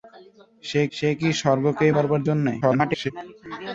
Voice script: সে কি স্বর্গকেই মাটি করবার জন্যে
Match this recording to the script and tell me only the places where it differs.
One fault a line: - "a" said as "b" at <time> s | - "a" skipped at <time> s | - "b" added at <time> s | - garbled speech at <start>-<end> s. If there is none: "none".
- "সে" added at 0.9 s
- "মাটি" skipped at 1.9 s
- garbled speech at 2.6-3.1 s